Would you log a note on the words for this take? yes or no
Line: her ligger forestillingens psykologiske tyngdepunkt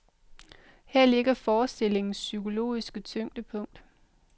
no